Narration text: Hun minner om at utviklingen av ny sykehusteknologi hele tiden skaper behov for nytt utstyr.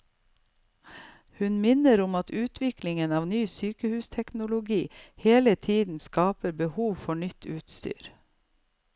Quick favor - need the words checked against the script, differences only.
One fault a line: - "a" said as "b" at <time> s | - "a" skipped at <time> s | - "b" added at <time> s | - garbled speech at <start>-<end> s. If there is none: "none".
none